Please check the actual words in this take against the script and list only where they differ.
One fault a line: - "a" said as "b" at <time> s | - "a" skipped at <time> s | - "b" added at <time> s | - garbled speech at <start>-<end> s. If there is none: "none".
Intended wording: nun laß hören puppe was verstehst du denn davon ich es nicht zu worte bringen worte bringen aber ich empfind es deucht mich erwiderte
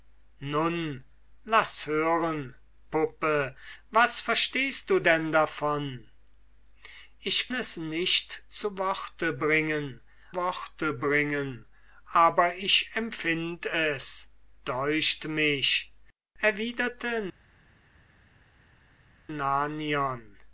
none